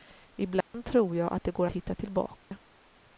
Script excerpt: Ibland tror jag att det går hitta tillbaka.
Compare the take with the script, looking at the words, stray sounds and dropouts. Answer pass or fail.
fail